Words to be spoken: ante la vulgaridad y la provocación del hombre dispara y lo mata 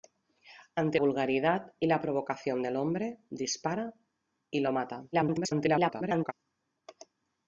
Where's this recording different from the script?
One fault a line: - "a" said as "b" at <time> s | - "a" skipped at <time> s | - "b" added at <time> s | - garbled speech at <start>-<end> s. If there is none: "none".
- "la" skipped at 1.0 s
- garbled speech at 5.1-6.3 s